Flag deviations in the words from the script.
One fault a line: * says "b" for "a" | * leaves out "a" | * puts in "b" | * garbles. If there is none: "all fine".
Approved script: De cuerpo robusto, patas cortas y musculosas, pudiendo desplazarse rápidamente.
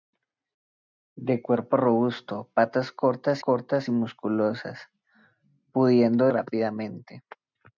* puts in "cortas"
* leaves out "desplazarse"